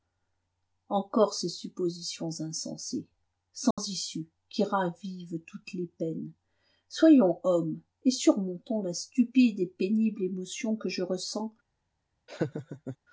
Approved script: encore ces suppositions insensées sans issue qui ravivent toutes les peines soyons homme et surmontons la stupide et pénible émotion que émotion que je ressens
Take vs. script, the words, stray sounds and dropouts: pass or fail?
fail